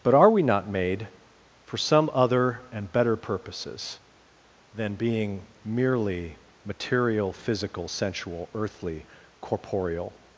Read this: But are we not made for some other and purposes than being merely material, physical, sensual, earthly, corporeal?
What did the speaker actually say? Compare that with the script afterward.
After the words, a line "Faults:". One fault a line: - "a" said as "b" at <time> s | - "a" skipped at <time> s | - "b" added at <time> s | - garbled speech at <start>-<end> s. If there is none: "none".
But are we not made for some other and better purposes than being merely material, physical, sensual, earthly, corporeal?
Faults:
- "better" added at 2.9 s